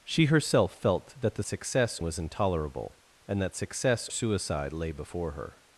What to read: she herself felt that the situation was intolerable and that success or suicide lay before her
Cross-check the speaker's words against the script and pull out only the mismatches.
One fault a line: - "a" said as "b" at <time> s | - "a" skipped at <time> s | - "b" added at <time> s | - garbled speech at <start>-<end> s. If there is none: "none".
- "situation" said as "success" at 1.5 s
- "or" skipped at 4.1 s